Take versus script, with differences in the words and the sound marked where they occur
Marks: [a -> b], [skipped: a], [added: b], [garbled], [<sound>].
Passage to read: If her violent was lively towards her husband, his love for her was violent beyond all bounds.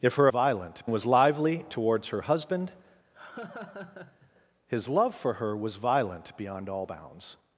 If her violent was lively towards her husband, [laugh] his love for her was violent beyond all bounds.